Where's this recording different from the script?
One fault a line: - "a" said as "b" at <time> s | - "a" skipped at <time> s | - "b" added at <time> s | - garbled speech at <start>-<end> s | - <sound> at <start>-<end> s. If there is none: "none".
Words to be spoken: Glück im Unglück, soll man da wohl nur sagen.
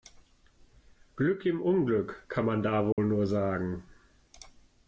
- "soll" said as "kann" at 2.3 s
- dropout at 2.9-3.0 s